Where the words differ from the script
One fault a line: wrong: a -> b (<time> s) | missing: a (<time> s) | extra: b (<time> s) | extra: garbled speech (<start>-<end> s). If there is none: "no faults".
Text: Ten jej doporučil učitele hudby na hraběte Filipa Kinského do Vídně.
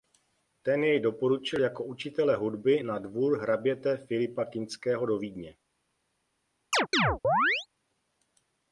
extra: jako (1.6 s)
extra: dvůr (3.0 s)